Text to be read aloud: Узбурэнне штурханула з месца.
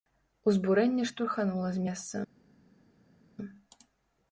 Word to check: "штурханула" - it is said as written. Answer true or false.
true